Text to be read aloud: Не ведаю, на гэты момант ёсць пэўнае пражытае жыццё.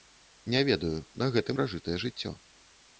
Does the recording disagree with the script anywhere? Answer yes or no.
yes